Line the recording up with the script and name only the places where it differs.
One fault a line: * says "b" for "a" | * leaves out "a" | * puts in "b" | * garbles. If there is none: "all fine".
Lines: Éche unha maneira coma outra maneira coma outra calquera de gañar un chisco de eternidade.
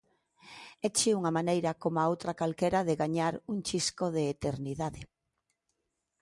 * leaves out "maneira coma outra"